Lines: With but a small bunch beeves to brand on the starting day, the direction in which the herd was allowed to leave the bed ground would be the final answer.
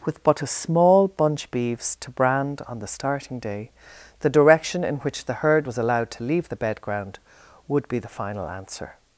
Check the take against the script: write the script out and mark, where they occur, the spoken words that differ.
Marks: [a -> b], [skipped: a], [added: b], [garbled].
With but a small bunch beeves to brand on the starting day, the direction in which the herd was allowed to leave the bed ground would be the final answer.